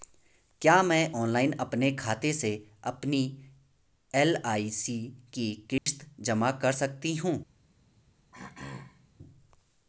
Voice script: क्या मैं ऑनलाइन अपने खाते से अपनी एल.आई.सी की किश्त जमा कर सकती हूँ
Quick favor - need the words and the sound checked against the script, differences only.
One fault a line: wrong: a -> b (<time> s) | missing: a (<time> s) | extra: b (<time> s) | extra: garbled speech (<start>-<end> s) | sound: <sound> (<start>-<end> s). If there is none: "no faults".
sound: dropout (5.8-5.9 s)
sound: throat clearing (8.3-9.1 s)